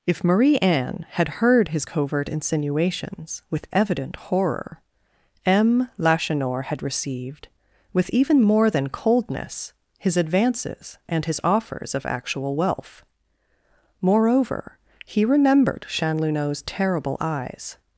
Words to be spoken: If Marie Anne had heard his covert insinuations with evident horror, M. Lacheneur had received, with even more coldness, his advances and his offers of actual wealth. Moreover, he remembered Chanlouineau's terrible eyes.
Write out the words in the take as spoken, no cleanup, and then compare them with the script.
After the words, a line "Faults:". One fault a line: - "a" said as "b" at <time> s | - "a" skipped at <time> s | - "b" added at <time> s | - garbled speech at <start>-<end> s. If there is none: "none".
If Marie Anne had heard his covert insinuations with evident horror, M. Lacheneur had received, with even more than coldness, his advances and his offers of actual wealth. Moreover, he remembered Chanlouineau's terrible eyes.
Faults:
- "than" added at 8.7 s